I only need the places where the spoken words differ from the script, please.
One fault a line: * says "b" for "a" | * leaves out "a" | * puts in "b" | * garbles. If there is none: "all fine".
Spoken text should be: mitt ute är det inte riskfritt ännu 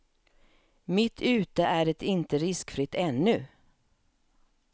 all fine